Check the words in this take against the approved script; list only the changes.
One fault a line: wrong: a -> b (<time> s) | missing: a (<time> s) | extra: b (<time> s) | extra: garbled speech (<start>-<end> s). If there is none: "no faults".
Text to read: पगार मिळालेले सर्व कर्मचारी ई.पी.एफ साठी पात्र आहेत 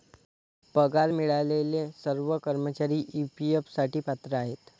no faults